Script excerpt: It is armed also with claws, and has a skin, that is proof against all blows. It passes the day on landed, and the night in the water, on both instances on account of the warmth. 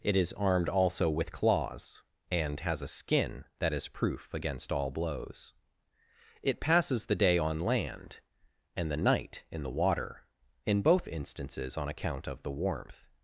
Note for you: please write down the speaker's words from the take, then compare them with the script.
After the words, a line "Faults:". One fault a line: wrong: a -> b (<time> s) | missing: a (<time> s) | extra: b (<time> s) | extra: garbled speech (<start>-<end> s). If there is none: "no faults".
It is armed also with claws, and has a skin, that is proof against all blows. It passes the day on land, and the night in the water, in both instances on account of the warmth.
Faults:
wrong: landed -> land (7.6 s)
wrong: on -> in (10.7 s)